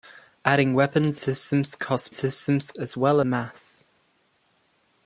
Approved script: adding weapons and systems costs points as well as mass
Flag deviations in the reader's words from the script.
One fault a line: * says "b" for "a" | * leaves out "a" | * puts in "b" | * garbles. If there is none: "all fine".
* leaves out "and"
* says "systems" for "points"
* leaves out "as"